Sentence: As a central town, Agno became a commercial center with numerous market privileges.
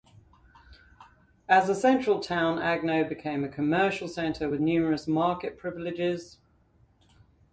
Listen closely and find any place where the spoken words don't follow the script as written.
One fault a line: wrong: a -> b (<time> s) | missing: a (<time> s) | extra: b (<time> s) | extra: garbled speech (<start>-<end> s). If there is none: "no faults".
no faults